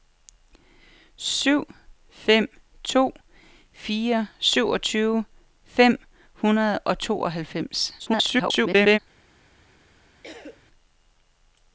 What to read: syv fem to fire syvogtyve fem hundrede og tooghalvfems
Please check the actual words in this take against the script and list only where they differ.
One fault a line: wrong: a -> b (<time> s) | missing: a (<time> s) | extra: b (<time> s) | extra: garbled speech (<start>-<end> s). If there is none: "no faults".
extra: garbled speech (8.0-9.0 s)